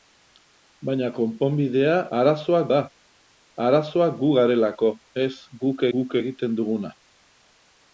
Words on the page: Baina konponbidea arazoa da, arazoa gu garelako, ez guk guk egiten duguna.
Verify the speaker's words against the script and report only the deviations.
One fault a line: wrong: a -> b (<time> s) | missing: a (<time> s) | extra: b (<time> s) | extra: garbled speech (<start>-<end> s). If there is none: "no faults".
no faults